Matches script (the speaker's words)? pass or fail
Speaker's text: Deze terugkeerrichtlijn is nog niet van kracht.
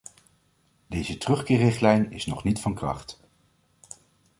pass